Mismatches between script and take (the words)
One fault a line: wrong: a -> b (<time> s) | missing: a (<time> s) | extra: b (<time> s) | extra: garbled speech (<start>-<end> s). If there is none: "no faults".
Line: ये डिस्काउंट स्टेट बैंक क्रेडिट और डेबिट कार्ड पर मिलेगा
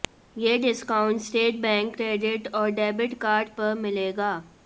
no faults